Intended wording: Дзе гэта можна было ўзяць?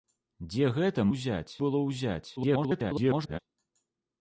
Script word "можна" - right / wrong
wrong